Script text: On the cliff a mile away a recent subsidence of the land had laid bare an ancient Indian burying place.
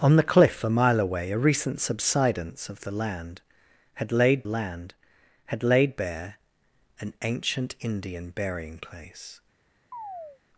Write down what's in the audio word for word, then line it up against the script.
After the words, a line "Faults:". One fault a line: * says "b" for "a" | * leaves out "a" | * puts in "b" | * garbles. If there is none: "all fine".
On the cliff a mile away a recent subsidence of the land had laid land had laid bare an ancient Indian burying place.
Faults:
* puts in "land had laid"